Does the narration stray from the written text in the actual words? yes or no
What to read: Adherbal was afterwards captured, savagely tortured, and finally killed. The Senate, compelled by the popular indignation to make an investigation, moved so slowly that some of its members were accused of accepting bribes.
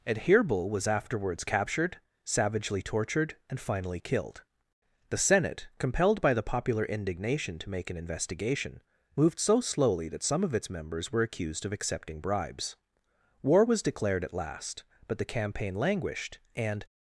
yes